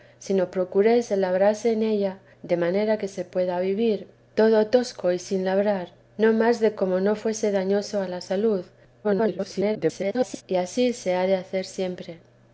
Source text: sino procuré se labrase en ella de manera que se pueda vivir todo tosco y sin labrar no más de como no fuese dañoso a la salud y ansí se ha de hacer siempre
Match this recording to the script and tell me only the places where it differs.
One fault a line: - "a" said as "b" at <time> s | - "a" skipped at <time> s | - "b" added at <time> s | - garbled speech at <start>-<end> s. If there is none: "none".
- garbled speech at 9.0-10.4 s